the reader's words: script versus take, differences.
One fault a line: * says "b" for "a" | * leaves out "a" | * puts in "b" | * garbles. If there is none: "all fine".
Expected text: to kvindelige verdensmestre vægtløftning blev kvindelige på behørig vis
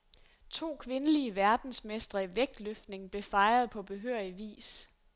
* puts in "i"
* says "fejret" for "kvindelige"